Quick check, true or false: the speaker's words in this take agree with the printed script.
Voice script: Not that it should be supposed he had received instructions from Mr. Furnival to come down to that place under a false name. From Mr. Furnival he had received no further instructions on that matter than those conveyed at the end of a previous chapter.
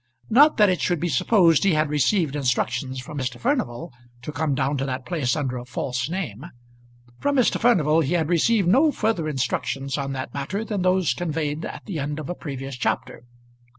true